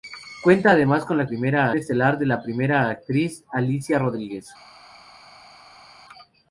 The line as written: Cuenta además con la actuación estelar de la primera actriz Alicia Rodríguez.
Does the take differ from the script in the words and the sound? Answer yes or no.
yes